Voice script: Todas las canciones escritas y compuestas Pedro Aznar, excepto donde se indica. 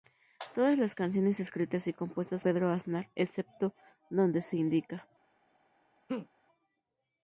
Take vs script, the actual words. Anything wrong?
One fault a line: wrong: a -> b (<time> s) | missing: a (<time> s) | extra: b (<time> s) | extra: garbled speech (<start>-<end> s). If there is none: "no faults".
no faults